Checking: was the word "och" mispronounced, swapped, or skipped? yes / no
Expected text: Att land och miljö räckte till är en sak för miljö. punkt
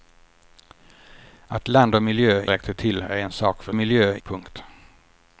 no